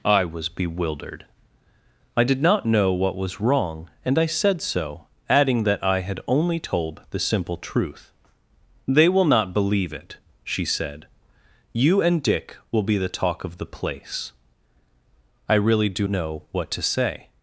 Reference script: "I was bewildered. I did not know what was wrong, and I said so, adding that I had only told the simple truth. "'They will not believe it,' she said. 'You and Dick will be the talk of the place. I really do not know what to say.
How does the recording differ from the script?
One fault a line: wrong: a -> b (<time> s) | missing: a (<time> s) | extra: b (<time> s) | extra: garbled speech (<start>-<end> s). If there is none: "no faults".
missing: not (16.1 s)